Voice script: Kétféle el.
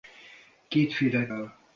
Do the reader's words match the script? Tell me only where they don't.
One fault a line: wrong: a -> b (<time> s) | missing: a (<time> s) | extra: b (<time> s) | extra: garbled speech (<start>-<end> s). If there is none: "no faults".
no faults